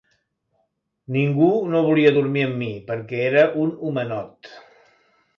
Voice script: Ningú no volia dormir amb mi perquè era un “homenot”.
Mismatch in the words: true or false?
false